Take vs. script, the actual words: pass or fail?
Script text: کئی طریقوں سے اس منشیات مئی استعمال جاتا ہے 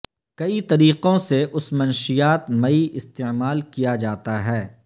fail